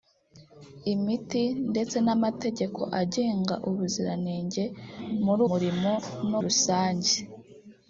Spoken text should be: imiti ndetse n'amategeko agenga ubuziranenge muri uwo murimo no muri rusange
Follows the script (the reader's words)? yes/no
no